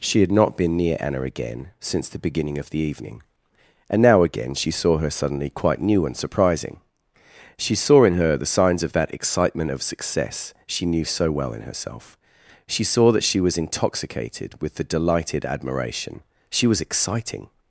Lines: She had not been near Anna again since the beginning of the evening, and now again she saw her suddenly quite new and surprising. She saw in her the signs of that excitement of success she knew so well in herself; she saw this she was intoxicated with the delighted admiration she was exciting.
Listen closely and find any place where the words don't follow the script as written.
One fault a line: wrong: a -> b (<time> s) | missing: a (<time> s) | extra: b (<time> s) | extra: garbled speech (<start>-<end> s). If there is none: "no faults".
wrong: this -> that (13.1 s)